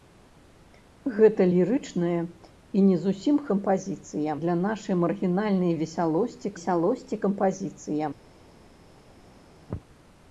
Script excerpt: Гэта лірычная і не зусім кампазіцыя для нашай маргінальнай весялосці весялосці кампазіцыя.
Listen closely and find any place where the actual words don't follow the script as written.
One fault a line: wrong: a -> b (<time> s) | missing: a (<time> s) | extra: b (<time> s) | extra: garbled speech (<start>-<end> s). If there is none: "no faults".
no faults